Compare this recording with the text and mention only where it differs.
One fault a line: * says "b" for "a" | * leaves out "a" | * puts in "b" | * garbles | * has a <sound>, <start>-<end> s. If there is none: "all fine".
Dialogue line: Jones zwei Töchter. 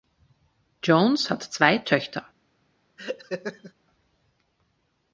* puts in "hat"
* has a laugh, 3.0-3.7 s